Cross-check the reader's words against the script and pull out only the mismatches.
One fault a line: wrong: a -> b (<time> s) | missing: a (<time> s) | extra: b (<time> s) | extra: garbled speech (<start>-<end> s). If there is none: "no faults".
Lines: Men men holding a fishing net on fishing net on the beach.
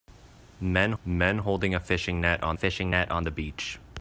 no faults